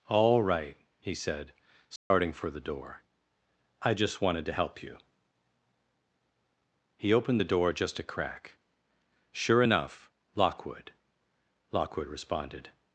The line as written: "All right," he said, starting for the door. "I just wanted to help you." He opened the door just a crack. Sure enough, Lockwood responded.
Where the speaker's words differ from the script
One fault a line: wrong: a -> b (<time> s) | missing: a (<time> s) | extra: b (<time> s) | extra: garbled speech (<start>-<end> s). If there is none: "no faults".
extra: Lockwood (11.7 s)